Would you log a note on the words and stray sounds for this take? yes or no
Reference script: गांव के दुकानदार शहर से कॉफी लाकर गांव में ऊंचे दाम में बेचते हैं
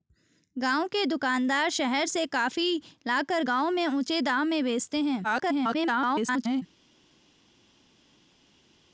yes